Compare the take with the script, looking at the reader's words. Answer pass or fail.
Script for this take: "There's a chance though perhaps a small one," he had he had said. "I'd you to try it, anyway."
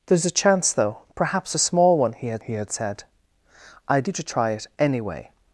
pass